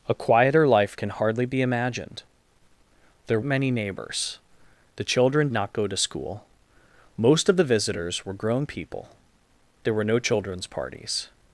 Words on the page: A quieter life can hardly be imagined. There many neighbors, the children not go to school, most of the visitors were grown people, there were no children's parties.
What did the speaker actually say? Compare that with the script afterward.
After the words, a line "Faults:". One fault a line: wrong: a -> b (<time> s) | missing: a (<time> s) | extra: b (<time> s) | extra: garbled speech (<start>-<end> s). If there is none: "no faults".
A quieter life can hardly be imagined. There many neighbors, the children not go to school, most of the visitors were grown people, there were no children's parties.
Faults:
no faults